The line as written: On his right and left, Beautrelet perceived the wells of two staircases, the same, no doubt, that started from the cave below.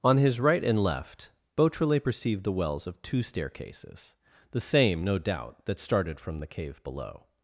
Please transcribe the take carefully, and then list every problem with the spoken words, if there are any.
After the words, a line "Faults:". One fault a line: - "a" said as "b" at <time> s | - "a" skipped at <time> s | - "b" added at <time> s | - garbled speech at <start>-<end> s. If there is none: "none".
On his right and left, Beautrelet perceived the wells of two staircases, the same, no doubt, that started from the cave below.
Faults:
none